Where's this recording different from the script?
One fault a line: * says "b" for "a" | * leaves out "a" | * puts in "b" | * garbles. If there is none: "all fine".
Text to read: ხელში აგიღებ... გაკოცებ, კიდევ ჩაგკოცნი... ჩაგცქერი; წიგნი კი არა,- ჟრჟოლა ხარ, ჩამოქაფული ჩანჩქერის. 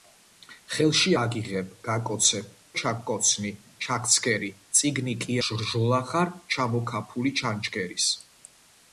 * leaves out "კიდევ"
* leaves out "არა"